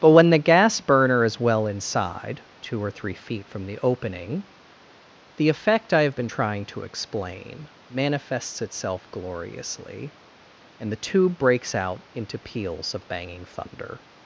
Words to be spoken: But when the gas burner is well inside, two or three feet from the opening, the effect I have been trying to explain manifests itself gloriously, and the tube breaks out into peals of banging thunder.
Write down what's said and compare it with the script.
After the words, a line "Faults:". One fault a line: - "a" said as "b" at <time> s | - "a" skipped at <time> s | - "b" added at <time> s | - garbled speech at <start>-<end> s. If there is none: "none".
But when the gas burner is well inside, two or three feet from the opening, the effect I have been trying to explain manifests itself gloriously, and the tube breaks out into peals of banging thunder.
Faults:
none